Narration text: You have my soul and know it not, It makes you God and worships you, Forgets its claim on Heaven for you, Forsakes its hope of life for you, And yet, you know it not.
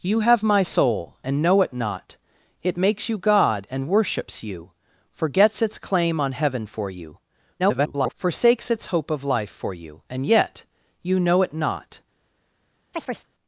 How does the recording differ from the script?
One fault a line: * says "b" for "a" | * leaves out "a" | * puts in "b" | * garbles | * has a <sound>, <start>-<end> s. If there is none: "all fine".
* garbles
* has a chirp, 12.9-13.3 s